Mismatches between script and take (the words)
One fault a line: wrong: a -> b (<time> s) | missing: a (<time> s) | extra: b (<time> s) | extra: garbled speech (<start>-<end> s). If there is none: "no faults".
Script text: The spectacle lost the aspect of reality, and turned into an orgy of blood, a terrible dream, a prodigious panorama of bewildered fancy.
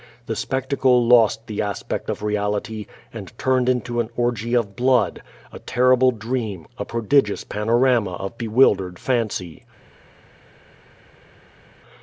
no faults